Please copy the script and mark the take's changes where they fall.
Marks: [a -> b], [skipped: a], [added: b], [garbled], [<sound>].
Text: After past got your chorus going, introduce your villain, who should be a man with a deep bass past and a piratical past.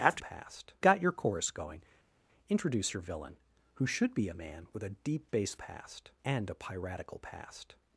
After past got your chorus going, introduce your villain, who should be a man with a deep bass past and a piratical past.